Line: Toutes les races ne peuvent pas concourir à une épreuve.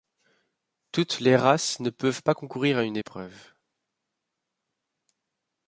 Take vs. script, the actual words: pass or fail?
pass